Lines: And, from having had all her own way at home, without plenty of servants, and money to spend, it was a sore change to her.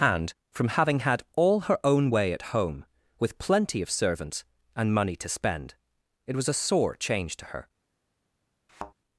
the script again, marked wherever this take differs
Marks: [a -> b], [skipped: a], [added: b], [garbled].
And, from having had all her own way at home, [without -> with] plenty of servants, and money to spend, it was a sore change to her.